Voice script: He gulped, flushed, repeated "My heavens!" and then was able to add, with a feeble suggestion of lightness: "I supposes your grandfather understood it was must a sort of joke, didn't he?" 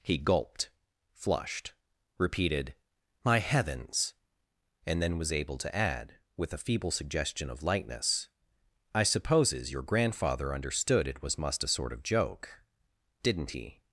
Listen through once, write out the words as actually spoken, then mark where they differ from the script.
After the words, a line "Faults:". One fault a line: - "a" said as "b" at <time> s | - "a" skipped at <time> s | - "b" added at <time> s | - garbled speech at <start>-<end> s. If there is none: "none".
He gulped, flushed, repeated "My heavens!" and then was able to add, with a feeble suggestion of lightness: "I supposes your grandfather understood it was must a sort of joke, didn't he?"
Faults:
none